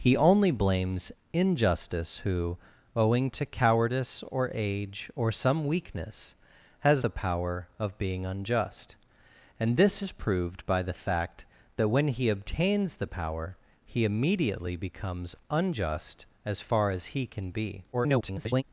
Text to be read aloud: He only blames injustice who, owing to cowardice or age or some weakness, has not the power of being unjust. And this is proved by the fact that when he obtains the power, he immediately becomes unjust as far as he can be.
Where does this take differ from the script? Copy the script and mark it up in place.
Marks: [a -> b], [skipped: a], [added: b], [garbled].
He only blames injustice who, owing to cowardice or age or some weakness, has [skipped: not] the power of being unjust. And this is proved by the fact that when he obtains the power, he immediately becomes unjust as far as he can be. [garbled]